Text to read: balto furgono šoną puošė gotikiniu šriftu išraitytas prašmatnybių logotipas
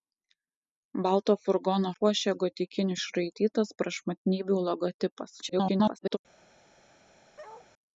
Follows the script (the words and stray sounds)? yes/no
no